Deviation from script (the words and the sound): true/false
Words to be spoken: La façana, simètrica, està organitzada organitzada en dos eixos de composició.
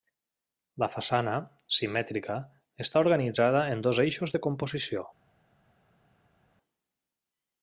true